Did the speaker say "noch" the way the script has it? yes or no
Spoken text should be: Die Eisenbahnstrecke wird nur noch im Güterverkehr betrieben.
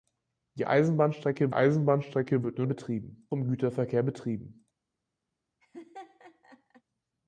no